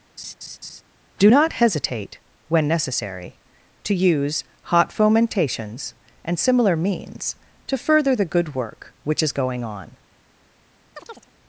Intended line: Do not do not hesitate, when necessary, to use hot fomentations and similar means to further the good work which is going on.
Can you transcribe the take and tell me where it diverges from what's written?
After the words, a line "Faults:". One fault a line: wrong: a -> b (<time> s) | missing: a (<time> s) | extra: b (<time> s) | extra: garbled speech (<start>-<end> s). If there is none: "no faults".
Do not hesitate, when necessary, to use hot fomentations and similar means to further the good work which is going on.
Faults:
missing: do not (1.5 s)